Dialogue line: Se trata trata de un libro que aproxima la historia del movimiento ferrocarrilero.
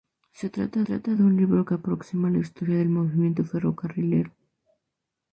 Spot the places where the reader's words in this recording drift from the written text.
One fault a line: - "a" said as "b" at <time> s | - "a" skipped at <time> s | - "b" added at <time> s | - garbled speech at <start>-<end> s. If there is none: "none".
none